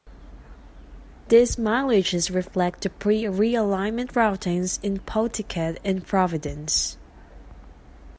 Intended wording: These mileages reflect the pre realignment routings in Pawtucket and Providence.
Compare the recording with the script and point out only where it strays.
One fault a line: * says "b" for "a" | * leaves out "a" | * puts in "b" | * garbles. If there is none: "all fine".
all fine